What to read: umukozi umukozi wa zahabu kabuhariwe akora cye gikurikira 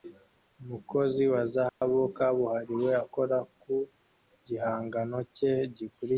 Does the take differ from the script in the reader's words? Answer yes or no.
yes